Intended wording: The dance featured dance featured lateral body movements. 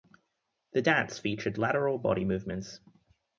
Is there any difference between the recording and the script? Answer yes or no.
yes